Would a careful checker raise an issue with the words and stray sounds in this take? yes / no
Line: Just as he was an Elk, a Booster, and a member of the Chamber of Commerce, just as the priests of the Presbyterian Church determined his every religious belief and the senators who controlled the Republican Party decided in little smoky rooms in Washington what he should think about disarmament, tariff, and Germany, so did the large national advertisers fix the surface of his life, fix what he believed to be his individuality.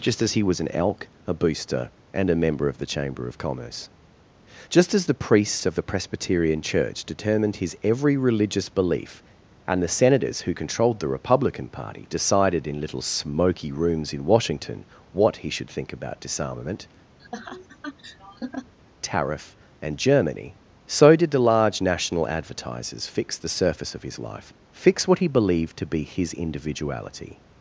yes